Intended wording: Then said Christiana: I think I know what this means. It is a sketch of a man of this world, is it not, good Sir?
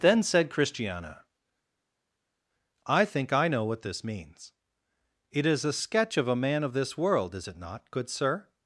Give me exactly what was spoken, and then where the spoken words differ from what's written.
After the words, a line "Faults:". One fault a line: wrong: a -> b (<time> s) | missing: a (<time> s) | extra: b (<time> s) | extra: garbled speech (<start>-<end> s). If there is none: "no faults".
Then said Christiana: I think I know what this means. It is a sketch of a man of this world, is it not, good Sir?
Faults:
no faults